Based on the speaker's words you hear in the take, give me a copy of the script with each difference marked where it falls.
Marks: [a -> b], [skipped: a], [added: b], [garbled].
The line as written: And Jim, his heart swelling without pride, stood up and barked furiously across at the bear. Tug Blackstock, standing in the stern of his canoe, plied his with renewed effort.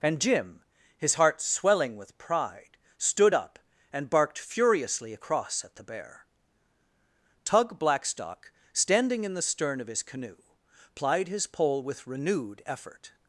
And Jim, his heart swelling [without -> with] pride, stood up and barked furiously across at the bear. Tug Blackstock, standing in the stern of his canoe, plied his [added: pole] with renewed effort.